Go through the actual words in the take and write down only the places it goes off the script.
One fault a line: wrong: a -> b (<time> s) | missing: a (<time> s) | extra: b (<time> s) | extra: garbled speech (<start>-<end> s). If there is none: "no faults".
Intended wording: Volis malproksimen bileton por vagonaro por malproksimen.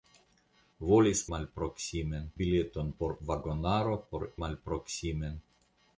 no faults